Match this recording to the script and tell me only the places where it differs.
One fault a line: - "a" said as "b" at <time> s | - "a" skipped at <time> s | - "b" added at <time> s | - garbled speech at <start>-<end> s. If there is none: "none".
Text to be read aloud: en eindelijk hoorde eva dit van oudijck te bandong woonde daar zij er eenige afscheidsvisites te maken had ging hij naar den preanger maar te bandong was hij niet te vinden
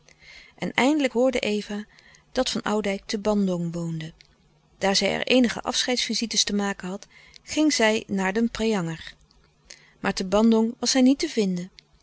- "dit" said as "dat" at 2.3 s
- "hij" said as "zij" at 7.7 s